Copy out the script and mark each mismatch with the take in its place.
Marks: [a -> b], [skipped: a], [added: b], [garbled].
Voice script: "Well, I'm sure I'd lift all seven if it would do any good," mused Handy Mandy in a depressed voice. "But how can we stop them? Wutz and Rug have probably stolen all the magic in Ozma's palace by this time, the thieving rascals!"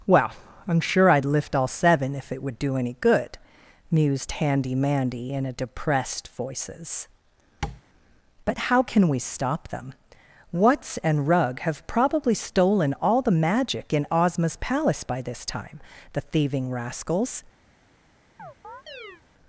"Well, I'm sure I'd lift all seven if it would do any good," mused Handy Mandy in a depressed [voice. -> voices] "But how can we stop them? Wutz and Rug have probably stolen all the magic in Ozma's palace by this time, the thieving rascals!"